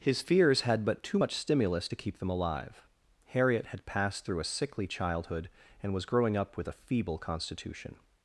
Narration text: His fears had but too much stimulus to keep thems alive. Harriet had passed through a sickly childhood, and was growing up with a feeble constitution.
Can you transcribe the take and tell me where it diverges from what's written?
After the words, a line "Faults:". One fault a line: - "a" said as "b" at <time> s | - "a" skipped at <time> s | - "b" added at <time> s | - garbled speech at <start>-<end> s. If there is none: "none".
His fears had but too much stimulus to keep them alive. Harriet had passed through a sickly childhood, and was growing up with a feeble constitution.
Faults:
- "thems" said as "them" at 2.2 s